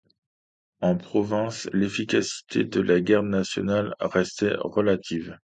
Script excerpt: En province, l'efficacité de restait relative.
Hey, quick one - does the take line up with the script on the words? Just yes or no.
no